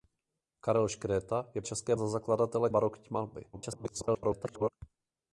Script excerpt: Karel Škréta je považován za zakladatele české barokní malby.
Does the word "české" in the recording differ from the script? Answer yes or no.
yes